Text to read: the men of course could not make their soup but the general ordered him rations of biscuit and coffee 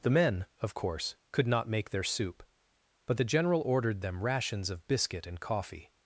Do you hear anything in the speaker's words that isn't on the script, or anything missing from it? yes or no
yes